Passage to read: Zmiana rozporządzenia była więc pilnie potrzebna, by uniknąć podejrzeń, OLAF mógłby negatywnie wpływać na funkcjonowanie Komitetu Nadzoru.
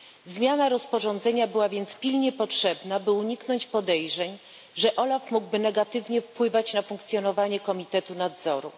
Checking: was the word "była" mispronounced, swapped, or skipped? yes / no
no